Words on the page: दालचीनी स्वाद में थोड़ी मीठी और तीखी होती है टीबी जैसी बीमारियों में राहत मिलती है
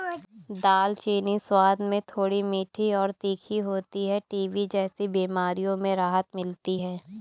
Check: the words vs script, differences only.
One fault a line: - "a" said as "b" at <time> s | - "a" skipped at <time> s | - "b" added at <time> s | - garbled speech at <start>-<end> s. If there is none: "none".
none